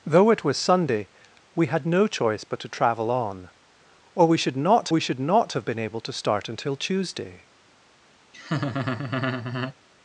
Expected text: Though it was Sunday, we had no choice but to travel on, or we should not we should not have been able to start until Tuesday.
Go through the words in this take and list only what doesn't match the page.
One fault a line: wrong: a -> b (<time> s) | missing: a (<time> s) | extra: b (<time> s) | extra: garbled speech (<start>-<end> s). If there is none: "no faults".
no faults